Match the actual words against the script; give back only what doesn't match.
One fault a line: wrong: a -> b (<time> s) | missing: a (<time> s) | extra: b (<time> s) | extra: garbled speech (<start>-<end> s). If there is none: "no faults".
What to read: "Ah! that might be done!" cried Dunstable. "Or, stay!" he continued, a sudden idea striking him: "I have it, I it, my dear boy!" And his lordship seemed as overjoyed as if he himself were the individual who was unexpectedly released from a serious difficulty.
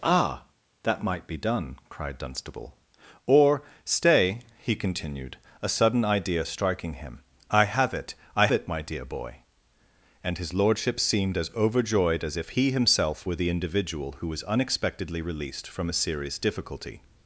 no faults